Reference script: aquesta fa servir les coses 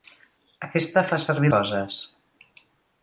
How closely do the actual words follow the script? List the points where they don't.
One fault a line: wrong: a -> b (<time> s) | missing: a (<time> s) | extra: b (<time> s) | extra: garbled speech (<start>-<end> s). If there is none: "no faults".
missing: les (1.5 s)